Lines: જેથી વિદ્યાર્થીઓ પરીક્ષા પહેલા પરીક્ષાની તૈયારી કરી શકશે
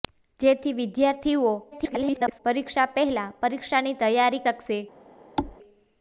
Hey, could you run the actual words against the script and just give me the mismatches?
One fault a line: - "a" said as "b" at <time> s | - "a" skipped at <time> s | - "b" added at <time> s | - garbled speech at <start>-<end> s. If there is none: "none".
- garbled speech at 1.7-2.4 s
- "કરી" skipped at 4.5 s